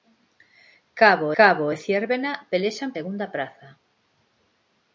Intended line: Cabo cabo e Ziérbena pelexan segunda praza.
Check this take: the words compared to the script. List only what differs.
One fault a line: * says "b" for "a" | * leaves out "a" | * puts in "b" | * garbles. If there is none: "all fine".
all fine